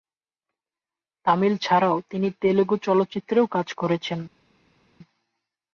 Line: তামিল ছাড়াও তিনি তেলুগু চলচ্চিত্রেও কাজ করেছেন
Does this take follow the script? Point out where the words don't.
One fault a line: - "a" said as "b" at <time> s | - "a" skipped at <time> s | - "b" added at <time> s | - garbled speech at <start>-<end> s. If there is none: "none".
none